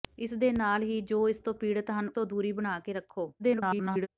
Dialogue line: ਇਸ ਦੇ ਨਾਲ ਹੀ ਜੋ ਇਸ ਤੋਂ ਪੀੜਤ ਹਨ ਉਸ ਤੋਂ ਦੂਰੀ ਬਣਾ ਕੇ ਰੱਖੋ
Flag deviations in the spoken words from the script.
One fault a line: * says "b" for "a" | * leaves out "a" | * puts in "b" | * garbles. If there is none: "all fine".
* leaves out "ਉਸ"
* garbles